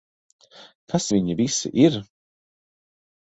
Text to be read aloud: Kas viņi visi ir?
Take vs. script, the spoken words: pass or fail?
pass